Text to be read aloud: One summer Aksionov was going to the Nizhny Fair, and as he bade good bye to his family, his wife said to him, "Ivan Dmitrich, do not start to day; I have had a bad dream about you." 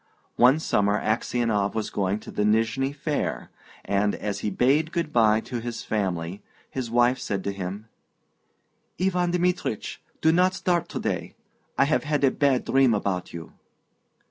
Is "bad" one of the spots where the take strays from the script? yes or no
no